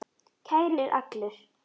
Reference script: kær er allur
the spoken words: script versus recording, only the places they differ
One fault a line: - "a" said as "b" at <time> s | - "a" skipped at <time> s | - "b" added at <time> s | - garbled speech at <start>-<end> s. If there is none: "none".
none